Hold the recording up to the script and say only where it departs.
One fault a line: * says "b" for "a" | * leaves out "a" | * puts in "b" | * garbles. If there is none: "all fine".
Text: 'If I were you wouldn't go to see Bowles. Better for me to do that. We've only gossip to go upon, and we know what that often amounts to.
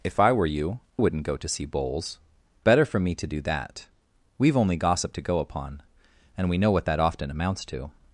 all fine